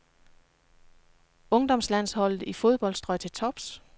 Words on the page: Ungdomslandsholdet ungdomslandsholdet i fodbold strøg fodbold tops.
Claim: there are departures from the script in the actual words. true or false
true